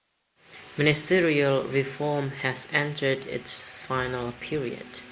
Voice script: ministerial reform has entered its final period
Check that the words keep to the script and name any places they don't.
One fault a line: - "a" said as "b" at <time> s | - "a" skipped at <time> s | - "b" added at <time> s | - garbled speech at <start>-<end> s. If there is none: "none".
none